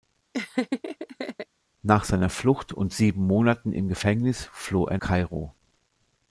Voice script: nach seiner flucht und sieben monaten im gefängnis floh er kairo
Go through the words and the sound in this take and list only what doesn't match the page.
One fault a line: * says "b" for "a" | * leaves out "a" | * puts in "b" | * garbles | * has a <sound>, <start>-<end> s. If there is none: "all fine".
* has a laugh, 0.3-1.5 s